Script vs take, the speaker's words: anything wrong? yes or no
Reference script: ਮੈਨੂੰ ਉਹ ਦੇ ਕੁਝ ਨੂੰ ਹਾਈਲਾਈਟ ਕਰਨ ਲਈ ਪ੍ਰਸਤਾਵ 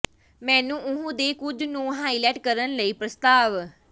no